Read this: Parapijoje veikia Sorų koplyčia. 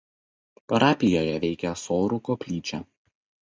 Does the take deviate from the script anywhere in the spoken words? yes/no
no